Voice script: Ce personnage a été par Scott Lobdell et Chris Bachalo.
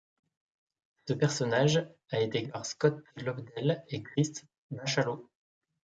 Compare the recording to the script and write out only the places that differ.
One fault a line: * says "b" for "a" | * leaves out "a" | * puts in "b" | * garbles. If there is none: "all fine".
all fine